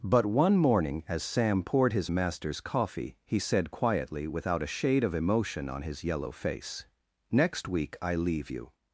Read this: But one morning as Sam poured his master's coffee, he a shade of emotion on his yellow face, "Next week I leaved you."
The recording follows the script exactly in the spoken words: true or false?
false